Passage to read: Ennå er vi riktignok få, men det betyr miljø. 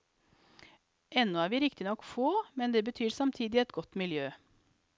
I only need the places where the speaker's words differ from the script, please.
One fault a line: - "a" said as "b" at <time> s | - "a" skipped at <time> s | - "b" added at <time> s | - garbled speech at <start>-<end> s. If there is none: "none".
- "samtidig et godt" added at 3.1 s